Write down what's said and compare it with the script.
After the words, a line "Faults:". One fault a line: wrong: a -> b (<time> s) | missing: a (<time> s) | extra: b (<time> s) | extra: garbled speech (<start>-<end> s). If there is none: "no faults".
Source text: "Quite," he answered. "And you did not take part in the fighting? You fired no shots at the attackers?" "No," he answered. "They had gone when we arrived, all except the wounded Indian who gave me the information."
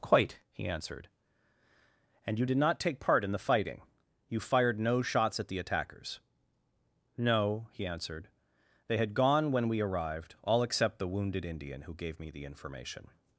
"Quite," he answered. "And you did not take part in the fighting? You fired no shots at the attackers?" "No," he answered. "They had gone when we arrived, all except the wounded Indian who gave me the information."
Faults:
no faults